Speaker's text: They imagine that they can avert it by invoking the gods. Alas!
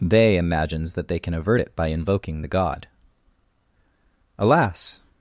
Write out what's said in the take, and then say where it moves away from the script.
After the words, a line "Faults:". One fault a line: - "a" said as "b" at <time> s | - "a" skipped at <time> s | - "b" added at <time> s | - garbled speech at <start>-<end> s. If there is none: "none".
They imagines that they can avert it by invoking the god. Alas!
Faults:
- "imagine" said as "imagines" at 0.4 s
- "gods" said as "god" at 2.5 s